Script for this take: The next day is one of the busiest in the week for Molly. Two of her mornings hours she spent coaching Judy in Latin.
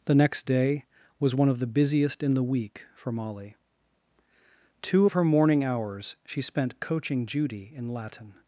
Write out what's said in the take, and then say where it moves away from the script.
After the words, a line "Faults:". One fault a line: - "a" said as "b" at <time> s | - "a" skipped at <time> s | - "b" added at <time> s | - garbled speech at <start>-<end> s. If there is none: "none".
The next day was one of the busiest in the week for Molly. Two of her morning hours she spent coaching Judy in Latin.
Faults:
- "is" said as "was" at 1.2 s
- "mornings" said as "morning" at 5.2 s